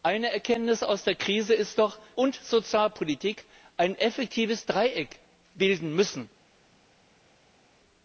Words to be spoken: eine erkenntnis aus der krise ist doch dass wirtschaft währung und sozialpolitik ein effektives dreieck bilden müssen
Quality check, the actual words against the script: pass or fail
fail